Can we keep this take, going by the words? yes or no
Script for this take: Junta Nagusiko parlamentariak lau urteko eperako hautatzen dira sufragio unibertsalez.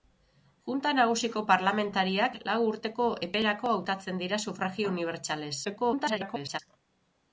no